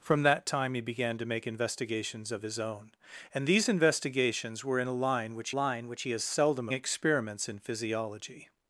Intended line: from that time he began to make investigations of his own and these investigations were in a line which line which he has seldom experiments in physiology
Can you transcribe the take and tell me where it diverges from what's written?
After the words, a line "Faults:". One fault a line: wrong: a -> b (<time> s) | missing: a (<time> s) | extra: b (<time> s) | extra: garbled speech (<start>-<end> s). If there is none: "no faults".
from that time he began to make investigations of his own and these investigations were in a line which line which he has seldom experiments in physiology
Faults:
no faults